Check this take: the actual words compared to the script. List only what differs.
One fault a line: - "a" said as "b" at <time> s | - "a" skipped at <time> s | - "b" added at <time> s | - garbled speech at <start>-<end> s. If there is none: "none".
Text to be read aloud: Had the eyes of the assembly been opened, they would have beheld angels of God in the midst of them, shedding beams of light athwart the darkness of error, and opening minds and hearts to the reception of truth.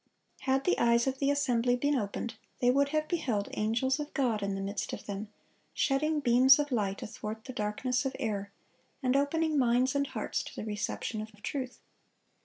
- "of" added at 11.3 s